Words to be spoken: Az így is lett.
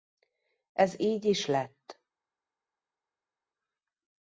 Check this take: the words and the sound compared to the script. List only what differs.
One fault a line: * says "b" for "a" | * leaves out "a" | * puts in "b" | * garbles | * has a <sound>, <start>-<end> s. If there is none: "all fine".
* says "Ez" for "Az"